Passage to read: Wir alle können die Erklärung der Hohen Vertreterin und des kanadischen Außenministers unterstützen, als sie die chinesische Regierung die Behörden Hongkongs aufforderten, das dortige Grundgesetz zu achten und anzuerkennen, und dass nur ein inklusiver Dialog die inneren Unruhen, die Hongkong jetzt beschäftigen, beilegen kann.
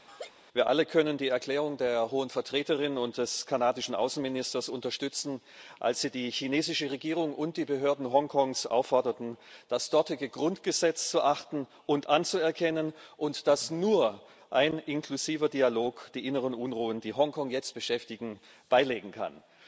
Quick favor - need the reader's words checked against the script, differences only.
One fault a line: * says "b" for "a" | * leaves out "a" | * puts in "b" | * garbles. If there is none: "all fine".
* puts in "und"